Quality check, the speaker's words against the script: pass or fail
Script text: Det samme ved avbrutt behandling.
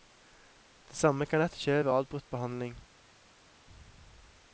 fail